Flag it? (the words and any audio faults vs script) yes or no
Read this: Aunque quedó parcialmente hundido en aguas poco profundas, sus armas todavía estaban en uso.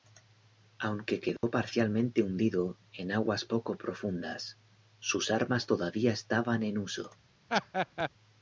yes